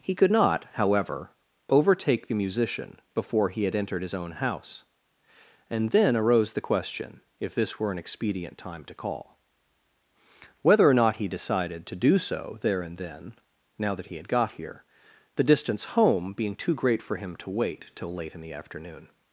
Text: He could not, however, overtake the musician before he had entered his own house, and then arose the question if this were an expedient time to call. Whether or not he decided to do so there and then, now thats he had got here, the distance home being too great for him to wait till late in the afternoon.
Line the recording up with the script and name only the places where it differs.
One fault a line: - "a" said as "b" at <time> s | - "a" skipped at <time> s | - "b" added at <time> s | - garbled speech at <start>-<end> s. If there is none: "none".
- "thats" said as "that" at 13.9 s